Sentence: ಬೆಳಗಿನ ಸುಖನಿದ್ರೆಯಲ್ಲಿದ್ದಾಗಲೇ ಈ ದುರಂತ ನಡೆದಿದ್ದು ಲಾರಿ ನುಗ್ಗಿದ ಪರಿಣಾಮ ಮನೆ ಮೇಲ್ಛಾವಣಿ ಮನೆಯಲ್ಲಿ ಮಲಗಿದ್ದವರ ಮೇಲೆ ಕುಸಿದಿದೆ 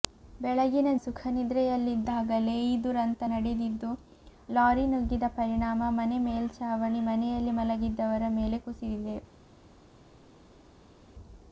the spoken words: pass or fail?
pass